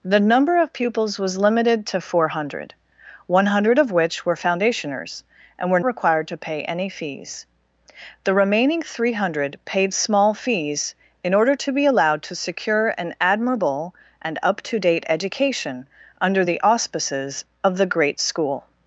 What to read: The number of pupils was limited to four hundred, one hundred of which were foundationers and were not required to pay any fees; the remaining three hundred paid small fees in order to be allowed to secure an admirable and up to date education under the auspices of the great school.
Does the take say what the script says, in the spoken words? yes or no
no